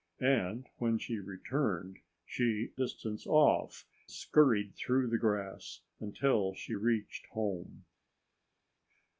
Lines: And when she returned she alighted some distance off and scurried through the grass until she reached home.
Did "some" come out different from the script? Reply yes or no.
yes